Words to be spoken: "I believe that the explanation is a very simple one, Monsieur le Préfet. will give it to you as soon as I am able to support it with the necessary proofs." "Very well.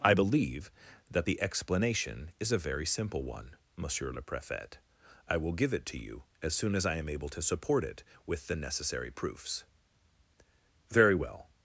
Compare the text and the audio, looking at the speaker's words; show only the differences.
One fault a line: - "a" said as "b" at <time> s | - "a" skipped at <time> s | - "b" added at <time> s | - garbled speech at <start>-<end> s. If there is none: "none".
- "I" added at 5.3 s